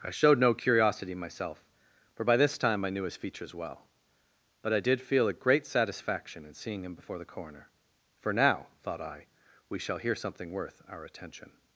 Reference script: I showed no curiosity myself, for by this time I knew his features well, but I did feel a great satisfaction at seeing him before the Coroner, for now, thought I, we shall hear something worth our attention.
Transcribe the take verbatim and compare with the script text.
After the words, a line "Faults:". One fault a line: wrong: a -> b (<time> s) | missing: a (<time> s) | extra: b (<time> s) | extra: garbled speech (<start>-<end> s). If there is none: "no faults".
I showed no curiosity myself, for by this time I knew his features well, but I did feel a great satisfaction in seeing him before the Coroner, for now, thought I, we shall hear something worth our attention.
Faults:
wrong: at -> in (6.4 s)